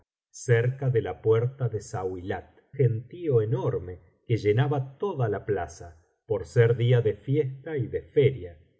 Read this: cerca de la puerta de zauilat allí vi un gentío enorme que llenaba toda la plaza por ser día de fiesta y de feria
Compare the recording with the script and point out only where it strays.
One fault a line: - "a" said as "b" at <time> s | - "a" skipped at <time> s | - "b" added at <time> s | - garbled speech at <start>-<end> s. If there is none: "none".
- "allí vi un" skipped at 2.5 s